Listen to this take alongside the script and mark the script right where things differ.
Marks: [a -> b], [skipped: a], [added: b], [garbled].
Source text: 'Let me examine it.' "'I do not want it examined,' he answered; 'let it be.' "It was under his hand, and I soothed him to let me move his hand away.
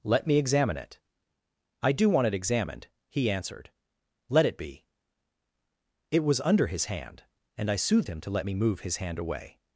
'Let me examine it.' "'I do [skipped: not] want it examined,' he answered; 'let it be.' "It was under his hand, and I soothed him to let me move his hand away.